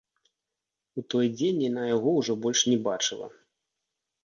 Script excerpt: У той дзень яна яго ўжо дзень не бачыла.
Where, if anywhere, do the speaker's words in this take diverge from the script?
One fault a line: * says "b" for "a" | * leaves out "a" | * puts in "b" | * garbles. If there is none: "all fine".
* says "больш" for "дзень"